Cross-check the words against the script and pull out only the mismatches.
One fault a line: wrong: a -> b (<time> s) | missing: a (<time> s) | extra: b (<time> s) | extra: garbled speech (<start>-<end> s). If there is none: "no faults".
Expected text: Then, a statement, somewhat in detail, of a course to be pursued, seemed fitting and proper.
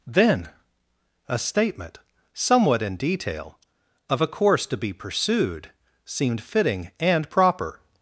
no faults